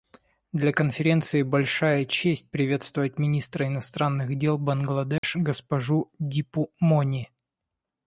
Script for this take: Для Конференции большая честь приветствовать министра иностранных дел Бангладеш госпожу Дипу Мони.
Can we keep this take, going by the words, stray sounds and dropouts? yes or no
no